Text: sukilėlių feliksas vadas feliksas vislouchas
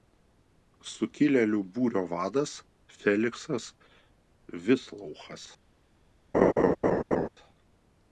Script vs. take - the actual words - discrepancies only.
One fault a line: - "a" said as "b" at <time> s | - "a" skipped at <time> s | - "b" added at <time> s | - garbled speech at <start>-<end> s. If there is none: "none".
- "feliksas" said as "būrio" at 1.8 s